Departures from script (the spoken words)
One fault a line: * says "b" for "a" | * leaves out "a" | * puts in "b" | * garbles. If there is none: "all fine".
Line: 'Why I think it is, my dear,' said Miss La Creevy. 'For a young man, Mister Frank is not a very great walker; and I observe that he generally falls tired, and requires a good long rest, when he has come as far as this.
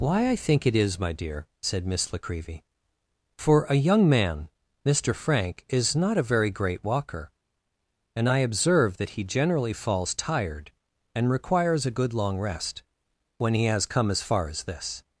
all fine